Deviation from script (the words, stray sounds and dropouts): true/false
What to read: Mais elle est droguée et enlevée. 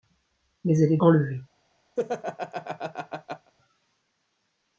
true